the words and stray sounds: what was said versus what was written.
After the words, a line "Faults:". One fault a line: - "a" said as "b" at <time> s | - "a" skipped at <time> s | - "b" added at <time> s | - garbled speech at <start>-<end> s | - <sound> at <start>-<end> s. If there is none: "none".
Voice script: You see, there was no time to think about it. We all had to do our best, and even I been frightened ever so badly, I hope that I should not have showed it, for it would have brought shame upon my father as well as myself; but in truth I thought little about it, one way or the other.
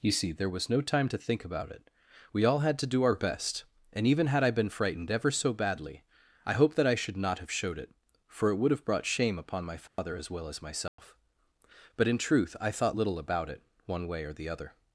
You see, there was no time to think about it. We all had to do our best, and even had I been frightened ever so badly, I hope that I should not have showed it, for it would have brought shame upon my father as well as myself; but in truth I thought little about it, one way or the other.
Faults:
- "had" added at 4.3 s
- dropout at 9.9-10.0 s
- dropout at 10.9-11.0 s